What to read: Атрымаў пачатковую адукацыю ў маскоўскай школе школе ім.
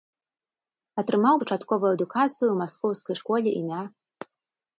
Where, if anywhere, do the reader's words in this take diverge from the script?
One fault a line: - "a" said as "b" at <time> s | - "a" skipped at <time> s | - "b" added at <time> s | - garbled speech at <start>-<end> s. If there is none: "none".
- "школе" skipped at 3.5 s